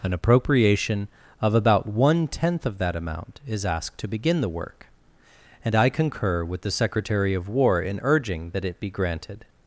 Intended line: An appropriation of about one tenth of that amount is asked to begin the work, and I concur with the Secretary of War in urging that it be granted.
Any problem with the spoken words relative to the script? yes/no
no